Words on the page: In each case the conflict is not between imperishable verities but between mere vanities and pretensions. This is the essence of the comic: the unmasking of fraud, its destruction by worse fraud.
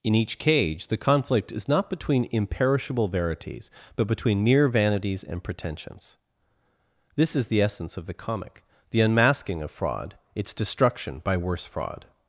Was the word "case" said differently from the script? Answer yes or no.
yes